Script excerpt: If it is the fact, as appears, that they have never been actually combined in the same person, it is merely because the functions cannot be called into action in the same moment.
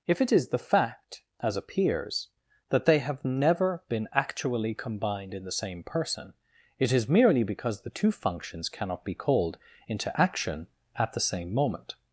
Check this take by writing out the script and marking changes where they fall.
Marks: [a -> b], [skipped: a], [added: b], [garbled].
If it is the fact, as appears, that they have never been actually combined in the same person, it is merely because the [added: two] functions cannot be called into action [in -> at] the same moment.